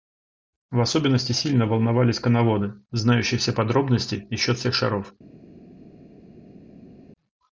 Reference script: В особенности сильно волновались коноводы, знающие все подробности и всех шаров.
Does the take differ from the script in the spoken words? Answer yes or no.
yes